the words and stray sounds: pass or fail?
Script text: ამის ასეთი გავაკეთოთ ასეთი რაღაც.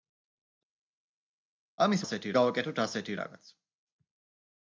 pass